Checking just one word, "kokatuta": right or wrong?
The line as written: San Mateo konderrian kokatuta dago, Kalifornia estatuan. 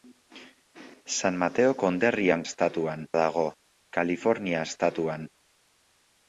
wrong